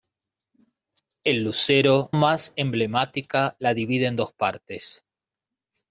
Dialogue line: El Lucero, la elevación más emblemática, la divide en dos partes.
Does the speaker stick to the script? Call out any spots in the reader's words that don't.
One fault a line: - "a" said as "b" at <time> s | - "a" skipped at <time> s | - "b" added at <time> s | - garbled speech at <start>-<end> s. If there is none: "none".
- "la elevación" skipped at 2.1 s